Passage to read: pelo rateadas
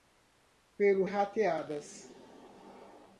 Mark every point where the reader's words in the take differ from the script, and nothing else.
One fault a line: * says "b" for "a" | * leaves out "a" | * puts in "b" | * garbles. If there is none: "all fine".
all fine